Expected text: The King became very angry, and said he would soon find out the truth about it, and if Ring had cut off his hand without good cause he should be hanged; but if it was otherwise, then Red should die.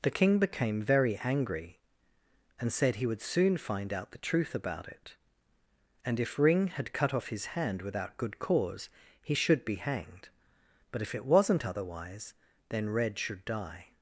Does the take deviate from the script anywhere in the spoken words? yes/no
yes